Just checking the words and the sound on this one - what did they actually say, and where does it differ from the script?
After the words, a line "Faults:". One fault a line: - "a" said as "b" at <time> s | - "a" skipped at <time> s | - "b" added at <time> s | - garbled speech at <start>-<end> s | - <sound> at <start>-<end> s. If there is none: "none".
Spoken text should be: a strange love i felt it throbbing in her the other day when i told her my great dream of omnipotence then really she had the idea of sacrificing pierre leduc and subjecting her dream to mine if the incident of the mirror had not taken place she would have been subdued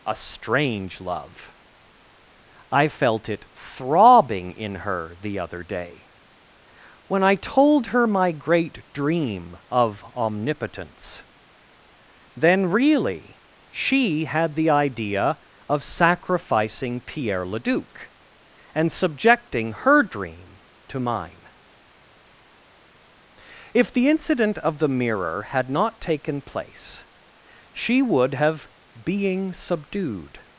a strange love i felt it throbbing in her the other day when i told her my great dream of omnipotence then really she had the idea of sacrificing pierre leduc and subjecting her dream to mine if the incident of the mirror had not taken place she would have being subdued
Faults:
- "been" said as "being" at 29.0 s